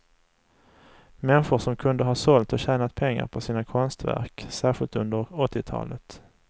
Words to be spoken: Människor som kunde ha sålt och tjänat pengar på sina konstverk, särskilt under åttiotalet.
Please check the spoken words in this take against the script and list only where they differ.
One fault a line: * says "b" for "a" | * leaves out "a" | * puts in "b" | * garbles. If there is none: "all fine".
all fine